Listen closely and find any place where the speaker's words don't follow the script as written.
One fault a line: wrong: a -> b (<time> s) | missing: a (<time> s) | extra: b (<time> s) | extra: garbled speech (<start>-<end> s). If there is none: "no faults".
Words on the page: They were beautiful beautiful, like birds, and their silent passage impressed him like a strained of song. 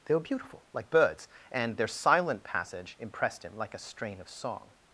missing: beautiful (0.7 s)
wrong: strained -> strain (3.8 s)